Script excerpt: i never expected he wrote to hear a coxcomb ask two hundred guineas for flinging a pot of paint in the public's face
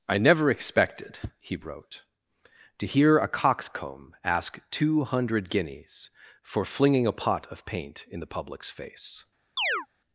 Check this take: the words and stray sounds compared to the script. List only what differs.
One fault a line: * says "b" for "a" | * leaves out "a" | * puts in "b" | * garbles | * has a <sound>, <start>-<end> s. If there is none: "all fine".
* has a chirp, 9.6-9.9 s